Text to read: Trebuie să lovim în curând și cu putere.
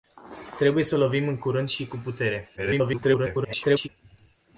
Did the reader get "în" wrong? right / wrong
right